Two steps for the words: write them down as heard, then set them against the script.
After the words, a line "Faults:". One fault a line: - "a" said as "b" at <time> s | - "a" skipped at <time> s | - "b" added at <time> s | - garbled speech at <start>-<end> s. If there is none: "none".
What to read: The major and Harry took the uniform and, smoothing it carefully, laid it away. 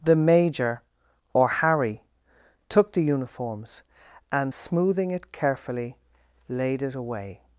The major or Harry took the uniforms and, smoothing it carefully, laid it away.
Faults:
- "and" said as "or" at 1.3 s
- "uniform" said as "uniforms" at 3.0 s